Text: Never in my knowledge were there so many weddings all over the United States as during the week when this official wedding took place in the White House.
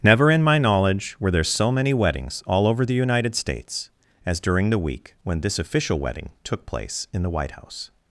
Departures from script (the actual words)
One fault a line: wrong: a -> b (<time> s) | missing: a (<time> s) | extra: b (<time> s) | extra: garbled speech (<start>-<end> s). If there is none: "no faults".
no faults